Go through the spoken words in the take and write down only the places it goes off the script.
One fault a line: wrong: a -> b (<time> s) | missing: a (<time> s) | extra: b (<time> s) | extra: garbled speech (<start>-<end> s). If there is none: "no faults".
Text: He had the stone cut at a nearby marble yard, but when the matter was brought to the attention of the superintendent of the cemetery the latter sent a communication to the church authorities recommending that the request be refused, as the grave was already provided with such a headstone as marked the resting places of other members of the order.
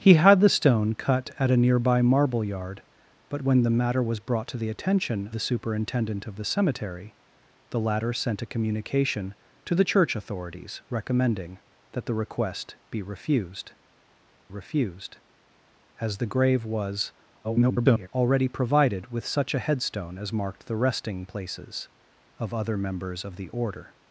missing: of (5.3 s)
extra: refused (14.5 s)
extra: garbled speech (17.4-18.1 s)